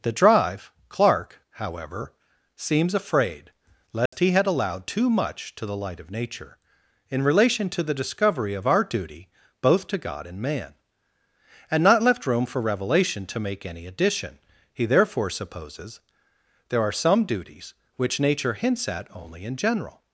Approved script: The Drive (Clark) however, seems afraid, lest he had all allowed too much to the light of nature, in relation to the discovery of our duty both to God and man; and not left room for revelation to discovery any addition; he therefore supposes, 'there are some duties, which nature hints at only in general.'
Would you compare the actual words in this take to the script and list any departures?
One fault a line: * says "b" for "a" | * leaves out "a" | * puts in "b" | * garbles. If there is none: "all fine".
* leaves out "all"
* says "make" for "discovery"